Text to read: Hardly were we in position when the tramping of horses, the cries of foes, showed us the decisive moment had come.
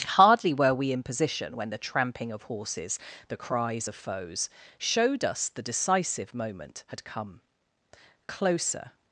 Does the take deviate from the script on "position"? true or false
false